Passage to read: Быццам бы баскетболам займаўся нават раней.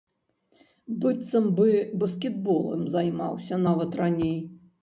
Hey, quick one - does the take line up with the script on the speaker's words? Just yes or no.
yes